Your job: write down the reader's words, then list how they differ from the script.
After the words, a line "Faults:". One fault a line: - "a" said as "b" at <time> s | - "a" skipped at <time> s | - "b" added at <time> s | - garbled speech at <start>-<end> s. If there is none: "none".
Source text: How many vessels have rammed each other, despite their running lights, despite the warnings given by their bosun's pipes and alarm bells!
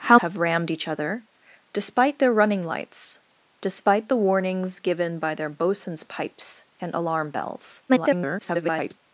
How have rammed each other, despite their running lights, despite the warnings given by their bosun's pipes and alarm bells! [garbled]
Faults:
- "many vessels" skipped at 0.2 s
- garbled speech at 7.9-9.0 s